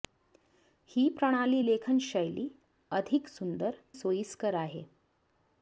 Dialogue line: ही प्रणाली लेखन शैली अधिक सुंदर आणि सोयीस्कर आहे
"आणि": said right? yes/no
no